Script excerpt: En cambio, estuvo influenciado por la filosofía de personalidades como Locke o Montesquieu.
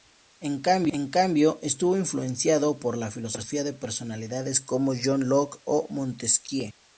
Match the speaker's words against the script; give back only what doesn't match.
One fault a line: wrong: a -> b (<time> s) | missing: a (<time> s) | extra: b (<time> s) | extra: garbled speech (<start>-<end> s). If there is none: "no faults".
extra: John (5.0 s)